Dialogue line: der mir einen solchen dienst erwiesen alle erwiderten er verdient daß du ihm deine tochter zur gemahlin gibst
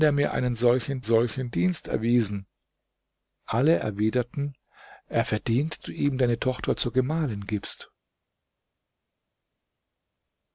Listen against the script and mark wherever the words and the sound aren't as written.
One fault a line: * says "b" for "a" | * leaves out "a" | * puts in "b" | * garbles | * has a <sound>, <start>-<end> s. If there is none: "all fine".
* puts in "solchen"
* leaves out "daß"